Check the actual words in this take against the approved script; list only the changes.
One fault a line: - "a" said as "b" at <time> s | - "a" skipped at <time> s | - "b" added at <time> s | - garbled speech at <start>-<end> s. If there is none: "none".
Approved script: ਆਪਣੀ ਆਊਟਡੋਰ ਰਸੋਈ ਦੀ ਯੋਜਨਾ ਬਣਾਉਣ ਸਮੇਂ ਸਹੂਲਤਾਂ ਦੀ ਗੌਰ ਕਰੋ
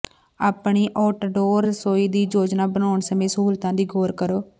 none